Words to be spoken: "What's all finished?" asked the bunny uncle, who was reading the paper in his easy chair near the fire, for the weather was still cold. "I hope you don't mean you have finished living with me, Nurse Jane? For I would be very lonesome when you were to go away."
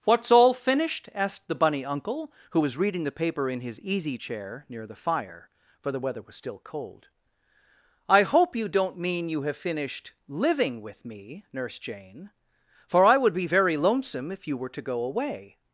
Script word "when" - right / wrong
wrong